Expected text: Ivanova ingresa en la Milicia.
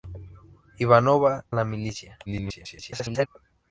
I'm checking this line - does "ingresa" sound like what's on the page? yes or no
no